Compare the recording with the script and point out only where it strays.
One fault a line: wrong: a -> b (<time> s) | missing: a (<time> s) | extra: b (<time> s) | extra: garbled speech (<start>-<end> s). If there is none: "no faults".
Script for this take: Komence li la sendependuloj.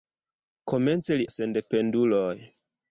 no faults